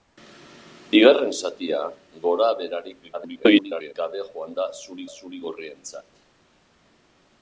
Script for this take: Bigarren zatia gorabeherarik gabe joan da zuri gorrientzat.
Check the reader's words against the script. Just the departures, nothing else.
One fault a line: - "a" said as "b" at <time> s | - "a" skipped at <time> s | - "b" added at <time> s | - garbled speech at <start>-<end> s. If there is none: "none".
- garbled speech at 3.1-3.9 s
- "zuri" added at 5.2 s